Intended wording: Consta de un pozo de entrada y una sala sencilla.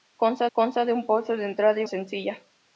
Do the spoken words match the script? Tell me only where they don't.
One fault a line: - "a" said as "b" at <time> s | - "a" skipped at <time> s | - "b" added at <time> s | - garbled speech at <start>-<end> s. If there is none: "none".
- "consta" added at 0.5 s
- "una sala" skipped at 1.9 s